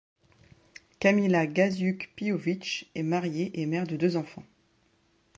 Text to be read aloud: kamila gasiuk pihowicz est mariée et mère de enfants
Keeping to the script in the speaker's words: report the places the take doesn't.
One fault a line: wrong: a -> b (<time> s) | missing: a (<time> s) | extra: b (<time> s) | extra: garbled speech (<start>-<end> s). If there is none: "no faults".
extra: deux (4.0 s)